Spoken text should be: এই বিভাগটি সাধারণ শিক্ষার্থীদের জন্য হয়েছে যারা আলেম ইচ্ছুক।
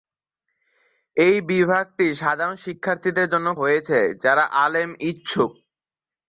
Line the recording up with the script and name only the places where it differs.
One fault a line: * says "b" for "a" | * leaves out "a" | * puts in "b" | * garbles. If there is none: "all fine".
all fine